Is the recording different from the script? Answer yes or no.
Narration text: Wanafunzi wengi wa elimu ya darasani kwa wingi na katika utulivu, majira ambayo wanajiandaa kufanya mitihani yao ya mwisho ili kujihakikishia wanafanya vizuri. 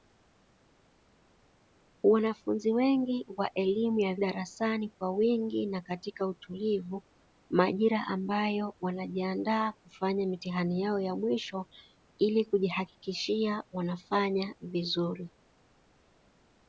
no